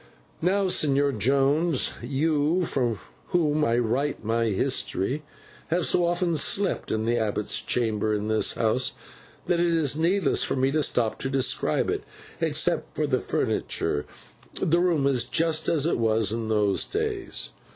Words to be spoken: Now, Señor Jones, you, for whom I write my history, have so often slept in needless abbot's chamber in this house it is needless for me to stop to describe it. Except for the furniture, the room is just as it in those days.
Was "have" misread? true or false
false